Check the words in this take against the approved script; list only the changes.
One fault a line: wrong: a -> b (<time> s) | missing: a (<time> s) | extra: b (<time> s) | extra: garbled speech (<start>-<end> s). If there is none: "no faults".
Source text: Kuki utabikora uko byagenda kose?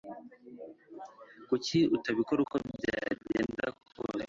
no faults